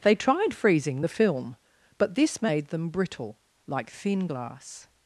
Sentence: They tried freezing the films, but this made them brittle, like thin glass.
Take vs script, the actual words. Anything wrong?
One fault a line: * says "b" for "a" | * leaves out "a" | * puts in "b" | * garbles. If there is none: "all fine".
* says "film" for "films"